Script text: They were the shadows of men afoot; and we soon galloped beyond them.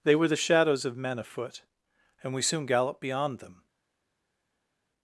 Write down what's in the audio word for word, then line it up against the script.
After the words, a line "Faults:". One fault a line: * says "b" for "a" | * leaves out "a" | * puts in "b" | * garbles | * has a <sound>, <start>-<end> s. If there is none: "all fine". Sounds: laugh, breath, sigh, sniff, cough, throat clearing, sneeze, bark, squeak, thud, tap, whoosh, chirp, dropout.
They were the shadows of men afoot; and we soon galloped beyond them.
Faults:
all fine